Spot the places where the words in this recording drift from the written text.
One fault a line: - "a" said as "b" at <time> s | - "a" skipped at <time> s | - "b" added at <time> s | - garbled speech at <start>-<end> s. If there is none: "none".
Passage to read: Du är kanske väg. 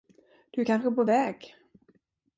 - "på" added at 0.9 s